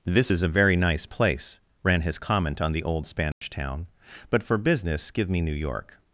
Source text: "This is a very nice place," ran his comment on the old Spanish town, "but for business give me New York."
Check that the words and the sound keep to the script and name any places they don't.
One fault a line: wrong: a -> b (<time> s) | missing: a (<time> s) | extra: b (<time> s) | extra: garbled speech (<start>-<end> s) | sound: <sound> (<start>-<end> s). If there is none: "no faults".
sound: dropout (3.3-3.4 s)